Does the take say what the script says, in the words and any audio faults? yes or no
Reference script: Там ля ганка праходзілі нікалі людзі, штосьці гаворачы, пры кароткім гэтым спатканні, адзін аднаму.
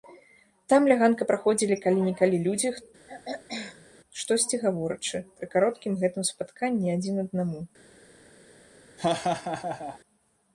no